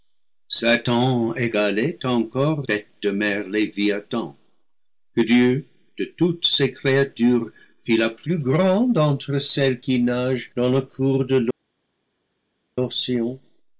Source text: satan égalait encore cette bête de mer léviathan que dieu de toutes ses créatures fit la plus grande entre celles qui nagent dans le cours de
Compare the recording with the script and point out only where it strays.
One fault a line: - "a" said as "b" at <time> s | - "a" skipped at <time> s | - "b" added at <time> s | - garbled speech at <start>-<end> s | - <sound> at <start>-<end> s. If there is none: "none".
- "cette" skipped at 2.7 s